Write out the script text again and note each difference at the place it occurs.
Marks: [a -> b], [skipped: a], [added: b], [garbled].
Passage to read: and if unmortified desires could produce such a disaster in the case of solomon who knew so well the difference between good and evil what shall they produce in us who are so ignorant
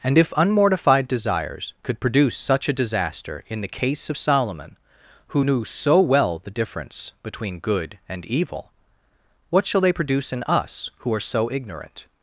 and if unmortified desires could produce such a disaster in the case of solomon who knew so well the difference between good and evil what shall they produce in us who are so ignorant